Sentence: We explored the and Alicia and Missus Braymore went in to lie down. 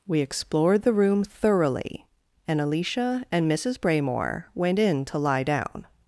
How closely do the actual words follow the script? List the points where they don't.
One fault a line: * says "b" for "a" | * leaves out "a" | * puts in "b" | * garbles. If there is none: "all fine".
* puts in "room thoroughly"